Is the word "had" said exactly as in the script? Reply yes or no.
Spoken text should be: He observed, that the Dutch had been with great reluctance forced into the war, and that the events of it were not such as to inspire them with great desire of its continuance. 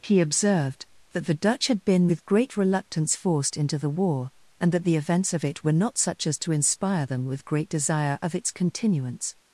yes